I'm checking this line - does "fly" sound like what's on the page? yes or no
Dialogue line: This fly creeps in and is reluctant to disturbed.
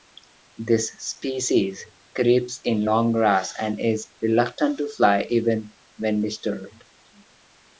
no